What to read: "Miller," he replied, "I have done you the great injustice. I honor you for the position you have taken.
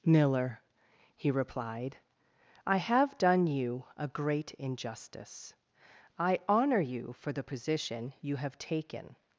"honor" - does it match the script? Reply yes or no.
yes